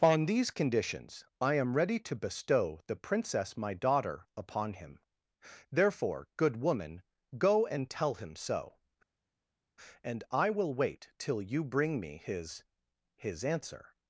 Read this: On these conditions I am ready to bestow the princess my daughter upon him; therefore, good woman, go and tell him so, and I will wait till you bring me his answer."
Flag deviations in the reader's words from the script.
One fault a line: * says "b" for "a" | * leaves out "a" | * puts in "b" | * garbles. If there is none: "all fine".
* puts in "his"